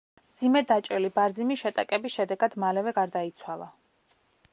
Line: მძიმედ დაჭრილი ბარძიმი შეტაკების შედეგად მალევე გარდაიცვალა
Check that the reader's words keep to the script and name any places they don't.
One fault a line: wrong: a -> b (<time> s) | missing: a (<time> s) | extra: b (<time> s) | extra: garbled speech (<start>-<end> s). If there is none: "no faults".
no faults